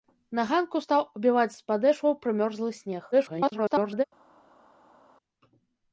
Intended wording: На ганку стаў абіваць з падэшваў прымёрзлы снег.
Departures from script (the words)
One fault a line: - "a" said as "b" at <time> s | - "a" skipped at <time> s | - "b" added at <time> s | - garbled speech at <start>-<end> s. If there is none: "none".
- garbled speech at 3.1-4.0 s